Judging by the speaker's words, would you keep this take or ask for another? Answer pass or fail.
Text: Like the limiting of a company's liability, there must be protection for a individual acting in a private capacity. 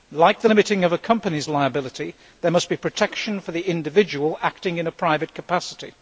fail